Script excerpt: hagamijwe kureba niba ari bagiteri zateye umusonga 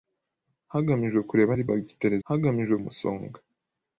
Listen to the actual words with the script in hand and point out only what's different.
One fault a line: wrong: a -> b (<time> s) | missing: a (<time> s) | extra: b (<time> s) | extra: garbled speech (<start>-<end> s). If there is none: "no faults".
missing: niba (1.5 s)
wrong: zateye -> hagamijwe (2.3 s)